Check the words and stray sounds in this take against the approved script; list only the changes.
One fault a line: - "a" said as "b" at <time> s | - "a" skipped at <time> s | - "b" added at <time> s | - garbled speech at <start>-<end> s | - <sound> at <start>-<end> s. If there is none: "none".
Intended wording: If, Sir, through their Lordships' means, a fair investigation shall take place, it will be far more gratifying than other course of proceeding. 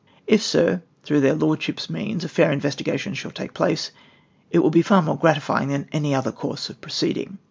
- "any" added at 5.9 s